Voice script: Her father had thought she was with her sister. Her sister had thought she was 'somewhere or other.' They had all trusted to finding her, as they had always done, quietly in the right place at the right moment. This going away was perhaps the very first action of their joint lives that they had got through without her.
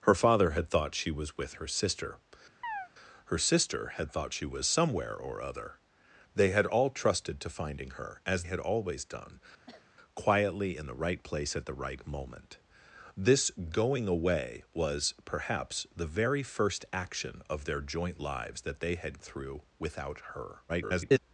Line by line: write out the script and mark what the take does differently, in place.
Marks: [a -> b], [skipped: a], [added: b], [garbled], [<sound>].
Her father had thought she was with her sister. [chirp] Her sister had thought she was 'somewhere or other.' They had all trusted to finding her, as [skipped: they] had always done, [cough] quietly in the right place at the right moment. This going away was perhaps the very first action of their joint lives that they had [skipped: got] through without her. [garbled]